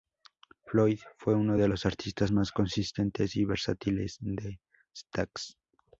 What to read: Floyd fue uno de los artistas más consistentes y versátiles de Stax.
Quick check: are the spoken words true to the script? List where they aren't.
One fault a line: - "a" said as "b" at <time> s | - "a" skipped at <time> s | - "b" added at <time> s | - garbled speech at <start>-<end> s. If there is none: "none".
none